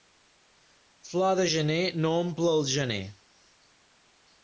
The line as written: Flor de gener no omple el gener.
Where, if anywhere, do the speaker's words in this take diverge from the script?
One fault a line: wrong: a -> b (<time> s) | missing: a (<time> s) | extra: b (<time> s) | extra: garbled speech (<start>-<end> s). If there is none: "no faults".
no faults